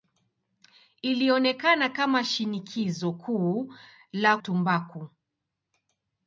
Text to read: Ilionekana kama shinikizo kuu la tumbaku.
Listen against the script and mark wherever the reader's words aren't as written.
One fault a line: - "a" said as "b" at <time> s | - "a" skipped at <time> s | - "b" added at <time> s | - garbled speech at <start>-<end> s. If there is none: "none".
none